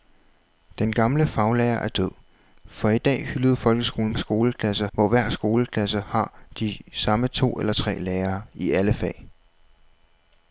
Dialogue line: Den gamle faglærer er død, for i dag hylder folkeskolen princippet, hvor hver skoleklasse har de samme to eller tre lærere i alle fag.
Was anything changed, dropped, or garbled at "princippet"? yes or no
yes